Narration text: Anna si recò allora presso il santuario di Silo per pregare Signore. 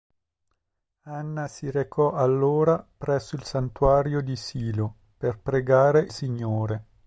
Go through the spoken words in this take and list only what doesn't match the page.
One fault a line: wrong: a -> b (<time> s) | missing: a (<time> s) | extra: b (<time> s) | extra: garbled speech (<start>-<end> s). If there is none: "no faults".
no faults